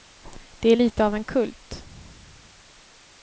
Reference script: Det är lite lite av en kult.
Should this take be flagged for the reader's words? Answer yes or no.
yes